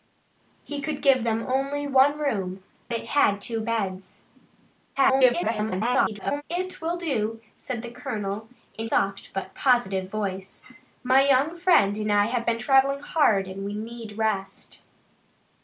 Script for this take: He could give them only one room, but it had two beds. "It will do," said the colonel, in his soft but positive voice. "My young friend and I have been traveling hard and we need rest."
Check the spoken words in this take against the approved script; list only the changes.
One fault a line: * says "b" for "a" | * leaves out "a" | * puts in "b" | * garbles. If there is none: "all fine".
* leaves out "but"
* garbles
* leaves out "his"